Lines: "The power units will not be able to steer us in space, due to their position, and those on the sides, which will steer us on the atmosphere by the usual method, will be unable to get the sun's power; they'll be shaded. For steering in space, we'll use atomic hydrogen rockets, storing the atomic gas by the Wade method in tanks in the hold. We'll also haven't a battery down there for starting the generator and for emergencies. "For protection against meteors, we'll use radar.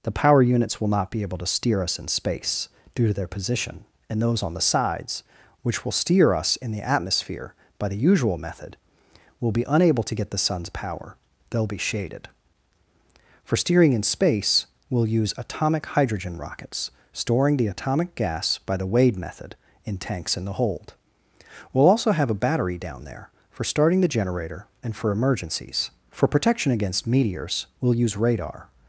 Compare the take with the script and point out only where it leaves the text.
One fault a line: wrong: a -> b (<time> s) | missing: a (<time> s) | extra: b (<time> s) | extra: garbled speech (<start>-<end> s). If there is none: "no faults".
wrong: on -> in (6.6 s)
wrong: haven't -> have (22.1 s)